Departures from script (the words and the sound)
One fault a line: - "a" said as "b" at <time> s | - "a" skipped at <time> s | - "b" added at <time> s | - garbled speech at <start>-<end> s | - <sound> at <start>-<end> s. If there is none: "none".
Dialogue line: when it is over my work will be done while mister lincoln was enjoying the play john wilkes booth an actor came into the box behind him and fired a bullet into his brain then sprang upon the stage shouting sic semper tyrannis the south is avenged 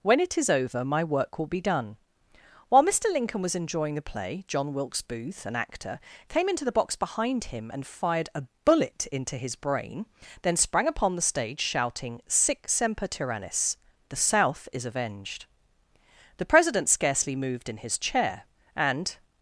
- "the president scarcely moved in his chair and" added at 16.4 s